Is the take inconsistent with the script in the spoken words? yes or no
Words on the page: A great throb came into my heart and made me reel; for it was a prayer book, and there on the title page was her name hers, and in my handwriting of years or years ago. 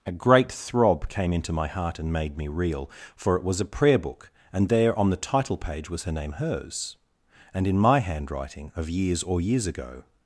no